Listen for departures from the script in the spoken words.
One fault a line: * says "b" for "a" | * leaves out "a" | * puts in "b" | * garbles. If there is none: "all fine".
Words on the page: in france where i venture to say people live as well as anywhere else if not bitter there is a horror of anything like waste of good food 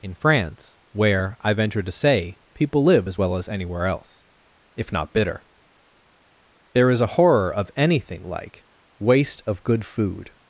all fine